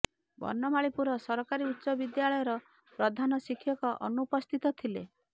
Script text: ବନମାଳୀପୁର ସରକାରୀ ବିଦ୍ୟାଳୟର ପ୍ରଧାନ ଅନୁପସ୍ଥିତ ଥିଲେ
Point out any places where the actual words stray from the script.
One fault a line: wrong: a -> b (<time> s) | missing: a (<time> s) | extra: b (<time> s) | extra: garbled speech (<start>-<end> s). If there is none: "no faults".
extra: ଉଚ୍ଚ (1.7 s)
extra: ଶିକ୍ଷକ (3.4 s)